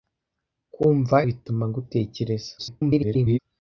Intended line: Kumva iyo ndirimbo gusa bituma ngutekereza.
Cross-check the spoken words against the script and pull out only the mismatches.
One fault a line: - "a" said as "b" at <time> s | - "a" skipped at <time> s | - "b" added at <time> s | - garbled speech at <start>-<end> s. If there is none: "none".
- "iyo ndirimbo gusa" skipped at 1.2 s
- garbled speech at 2.6-3.4 s